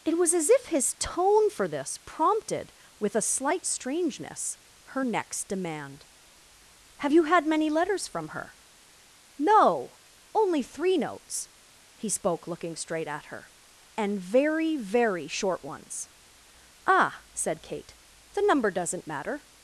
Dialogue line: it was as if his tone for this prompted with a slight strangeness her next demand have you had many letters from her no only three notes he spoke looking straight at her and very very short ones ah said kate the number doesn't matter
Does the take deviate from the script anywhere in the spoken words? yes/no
no